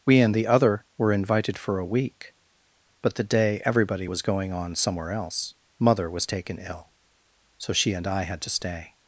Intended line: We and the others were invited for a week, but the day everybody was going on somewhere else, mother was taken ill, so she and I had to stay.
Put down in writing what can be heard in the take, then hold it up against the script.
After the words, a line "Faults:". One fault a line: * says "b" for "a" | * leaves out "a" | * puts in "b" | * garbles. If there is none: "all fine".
We and the other were invited for a week, but the day everybody was going on somewhere else, mother was taken ill, so she and I had to stay.
Faults:
* says "other" for "others"